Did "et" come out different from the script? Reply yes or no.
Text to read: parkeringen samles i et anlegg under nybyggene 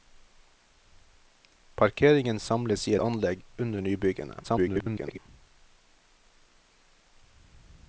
yes